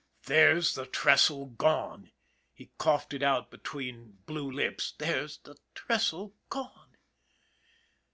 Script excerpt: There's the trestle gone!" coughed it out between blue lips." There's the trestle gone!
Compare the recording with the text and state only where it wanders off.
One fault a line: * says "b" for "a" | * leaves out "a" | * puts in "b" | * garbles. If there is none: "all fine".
* puts in "he"